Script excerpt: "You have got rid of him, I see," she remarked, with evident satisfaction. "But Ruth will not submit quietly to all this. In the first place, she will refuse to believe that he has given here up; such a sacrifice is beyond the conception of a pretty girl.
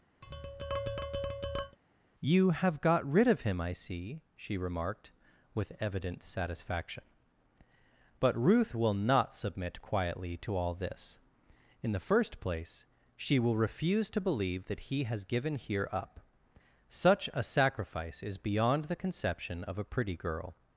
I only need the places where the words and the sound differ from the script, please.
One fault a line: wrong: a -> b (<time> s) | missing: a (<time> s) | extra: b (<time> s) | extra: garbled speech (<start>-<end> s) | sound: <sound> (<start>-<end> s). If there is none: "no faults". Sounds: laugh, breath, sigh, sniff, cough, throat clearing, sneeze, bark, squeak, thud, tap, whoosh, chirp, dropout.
sound: tap (0.2-1.8 s)